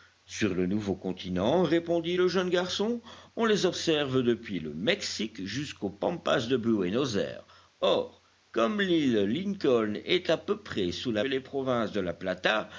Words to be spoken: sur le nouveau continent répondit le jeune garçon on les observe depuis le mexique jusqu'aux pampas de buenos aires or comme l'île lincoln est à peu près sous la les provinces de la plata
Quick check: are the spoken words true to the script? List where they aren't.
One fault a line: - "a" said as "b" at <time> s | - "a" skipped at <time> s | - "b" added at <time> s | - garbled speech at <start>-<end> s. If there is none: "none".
none